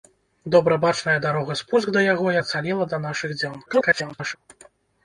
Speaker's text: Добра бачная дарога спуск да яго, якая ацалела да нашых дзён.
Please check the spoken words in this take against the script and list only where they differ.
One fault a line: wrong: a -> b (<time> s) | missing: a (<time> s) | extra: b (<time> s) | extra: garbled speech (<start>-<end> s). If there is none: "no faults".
missing: якая (2.3 s)
extra: garbled speech (3.7-4.4 s)